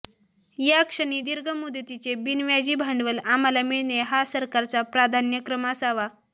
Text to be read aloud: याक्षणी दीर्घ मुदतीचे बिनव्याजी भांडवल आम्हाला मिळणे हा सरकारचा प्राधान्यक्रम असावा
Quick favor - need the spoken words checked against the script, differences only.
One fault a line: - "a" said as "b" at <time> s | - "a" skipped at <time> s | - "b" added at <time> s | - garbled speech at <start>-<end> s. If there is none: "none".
none